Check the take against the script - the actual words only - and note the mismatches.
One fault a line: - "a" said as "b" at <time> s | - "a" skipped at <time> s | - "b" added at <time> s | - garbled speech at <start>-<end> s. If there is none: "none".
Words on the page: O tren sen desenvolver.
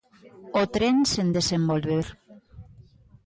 none